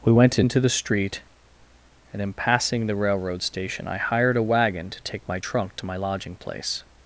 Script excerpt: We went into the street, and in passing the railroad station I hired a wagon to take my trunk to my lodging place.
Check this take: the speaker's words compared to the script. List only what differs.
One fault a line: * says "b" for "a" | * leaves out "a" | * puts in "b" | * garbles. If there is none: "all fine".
all fine